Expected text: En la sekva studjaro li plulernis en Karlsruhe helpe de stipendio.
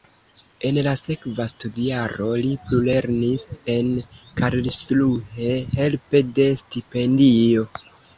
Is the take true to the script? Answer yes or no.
yes